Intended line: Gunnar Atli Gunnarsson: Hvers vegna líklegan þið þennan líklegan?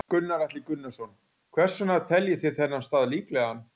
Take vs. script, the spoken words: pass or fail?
fail